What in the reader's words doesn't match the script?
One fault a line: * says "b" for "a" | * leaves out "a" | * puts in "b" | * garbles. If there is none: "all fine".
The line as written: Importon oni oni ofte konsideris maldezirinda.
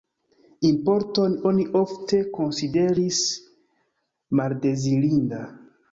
* leaves out "oni"